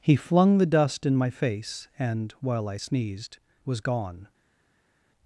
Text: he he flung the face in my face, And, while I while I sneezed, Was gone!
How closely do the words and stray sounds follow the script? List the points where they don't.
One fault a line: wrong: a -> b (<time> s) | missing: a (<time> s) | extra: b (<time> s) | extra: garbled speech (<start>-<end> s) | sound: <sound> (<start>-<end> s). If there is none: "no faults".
missing: he (0.1 s)
wrong: face -> dust (0.7 s)
missing: while I (2.8 s)